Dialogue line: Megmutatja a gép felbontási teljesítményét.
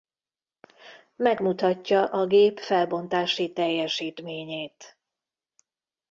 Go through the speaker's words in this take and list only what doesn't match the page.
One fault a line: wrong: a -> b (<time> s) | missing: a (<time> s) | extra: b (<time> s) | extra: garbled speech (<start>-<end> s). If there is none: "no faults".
no faults